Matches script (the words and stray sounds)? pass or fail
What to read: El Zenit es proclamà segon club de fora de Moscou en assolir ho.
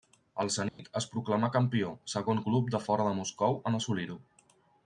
fail